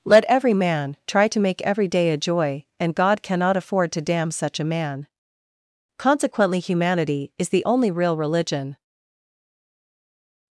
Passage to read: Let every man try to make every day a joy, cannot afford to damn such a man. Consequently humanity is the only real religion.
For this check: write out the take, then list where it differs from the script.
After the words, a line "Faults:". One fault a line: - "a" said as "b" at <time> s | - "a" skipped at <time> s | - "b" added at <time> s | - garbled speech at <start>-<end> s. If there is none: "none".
Let every man try to make every day a joy, and God cannot afford to damn such a man. Consequently humanity is the only real religion.
Faults:
- "and God" added at 2.8 s